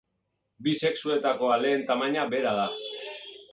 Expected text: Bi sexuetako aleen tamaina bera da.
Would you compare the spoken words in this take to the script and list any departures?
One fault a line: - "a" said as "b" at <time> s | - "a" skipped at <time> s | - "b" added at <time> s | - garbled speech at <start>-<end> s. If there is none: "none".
none